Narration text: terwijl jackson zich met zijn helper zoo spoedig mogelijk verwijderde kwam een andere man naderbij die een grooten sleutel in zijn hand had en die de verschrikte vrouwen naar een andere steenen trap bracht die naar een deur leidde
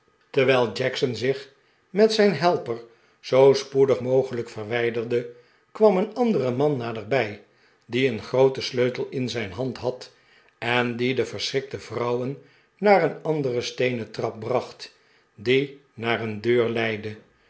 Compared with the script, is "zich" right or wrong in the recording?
right